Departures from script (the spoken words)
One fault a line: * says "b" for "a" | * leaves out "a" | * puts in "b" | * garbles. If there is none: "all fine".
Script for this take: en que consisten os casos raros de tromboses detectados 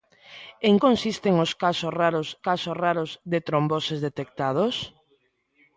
* leaves out "que"
* puts in "casos raros"